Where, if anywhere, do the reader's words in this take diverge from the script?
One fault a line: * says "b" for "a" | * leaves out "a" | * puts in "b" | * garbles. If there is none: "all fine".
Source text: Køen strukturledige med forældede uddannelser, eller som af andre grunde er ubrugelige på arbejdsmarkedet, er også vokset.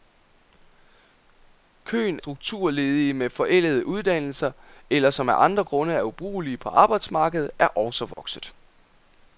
all fine